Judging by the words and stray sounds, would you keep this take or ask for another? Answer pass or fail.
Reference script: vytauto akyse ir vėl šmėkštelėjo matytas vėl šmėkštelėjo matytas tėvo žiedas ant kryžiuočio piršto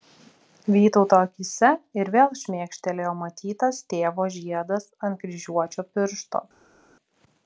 fail